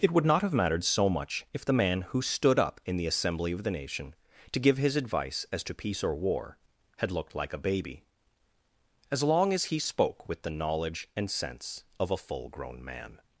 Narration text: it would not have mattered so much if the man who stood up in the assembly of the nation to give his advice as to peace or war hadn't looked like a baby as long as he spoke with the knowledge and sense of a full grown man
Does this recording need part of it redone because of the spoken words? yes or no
yes